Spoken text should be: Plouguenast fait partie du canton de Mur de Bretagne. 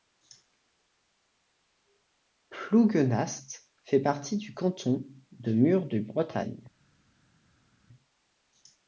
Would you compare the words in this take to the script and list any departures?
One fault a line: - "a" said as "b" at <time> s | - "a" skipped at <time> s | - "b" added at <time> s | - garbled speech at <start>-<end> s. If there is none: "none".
none